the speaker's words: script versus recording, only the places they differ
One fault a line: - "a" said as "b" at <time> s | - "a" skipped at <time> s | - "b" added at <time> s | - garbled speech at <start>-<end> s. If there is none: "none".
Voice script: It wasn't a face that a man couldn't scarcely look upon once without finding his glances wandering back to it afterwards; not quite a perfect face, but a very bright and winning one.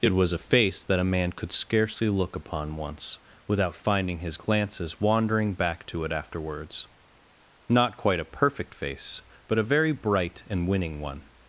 - "wasn't" said as "was" at 0.1 s
- "couldn't" said as "could" at 1.3 s